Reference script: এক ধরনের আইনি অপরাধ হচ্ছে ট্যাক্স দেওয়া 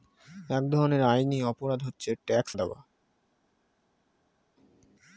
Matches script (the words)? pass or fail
pass